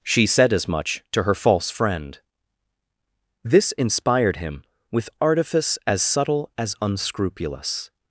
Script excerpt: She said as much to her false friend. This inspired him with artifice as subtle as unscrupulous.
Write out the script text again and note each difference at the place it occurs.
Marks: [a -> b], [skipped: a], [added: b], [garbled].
She said as much to her false friend. This inspired him with artifice as subtle as unscrupulous.